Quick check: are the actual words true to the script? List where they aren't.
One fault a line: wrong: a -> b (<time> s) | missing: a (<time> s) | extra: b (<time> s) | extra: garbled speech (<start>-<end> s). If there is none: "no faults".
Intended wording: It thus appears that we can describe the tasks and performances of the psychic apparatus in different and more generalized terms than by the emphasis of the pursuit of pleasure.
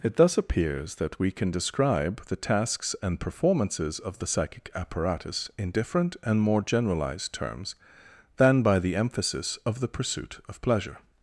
no faults